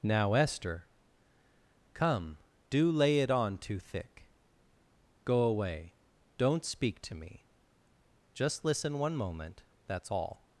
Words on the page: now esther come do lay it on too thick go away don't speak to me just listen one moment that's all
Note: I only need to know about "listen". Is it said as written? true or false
true